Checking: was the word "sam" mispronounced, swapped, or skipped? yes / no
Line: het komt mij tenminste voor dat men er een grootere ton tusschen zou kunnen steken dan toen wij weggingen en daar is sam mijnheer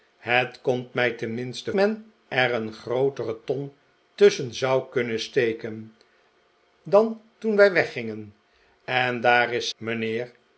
yes